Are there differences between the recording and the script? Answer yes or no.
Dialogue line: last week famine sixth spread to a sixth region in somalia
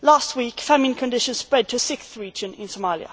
yes